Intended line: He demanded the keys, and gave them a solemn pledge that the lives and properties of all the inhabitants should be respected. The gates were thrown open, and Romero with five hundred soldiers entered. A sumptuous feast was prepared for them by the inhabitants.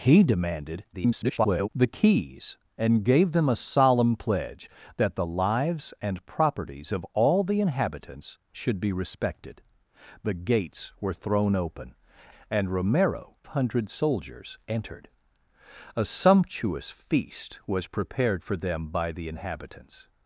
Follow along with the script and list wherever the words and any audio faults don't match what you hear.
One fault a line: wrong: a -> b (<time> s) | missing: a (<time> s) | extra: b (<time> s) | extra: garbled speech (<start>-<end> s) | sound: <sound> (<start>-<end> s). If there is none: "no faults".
extra: garbled speech (0.9-1.7 s)
missing: with five (13.4 s)